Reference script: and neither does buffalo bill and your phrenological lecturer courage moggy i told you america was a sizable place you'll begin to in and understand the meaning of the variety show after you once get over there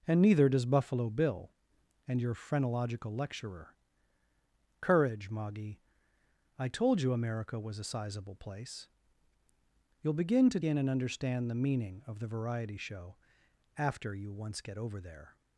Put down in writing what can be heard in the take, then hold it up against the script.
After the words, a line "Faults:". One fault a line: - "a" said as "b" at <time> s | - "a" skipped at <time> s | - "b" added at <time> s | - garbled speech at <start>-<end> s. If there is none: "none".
and neither does buffalo bill and your phrenological lecturer courage moggy i told you america was a sizable place you'll begin to in and understand the meaning of the variety show after you once get over there
Faults:
none